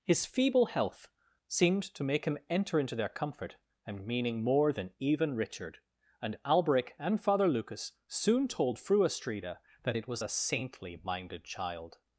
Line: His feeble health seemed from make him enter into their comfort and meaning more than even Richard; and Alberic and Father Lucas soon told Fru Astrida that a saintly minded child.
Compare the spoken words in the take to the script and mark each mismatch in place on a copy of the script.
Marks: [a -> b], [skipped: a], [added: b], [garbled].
His feeble health seemed [from -> to] make him enter into their comfort and meaning more than even Richard; and Alberic and Father Lucas soon told Fru Astrida that [added: it was] a saintly minded child.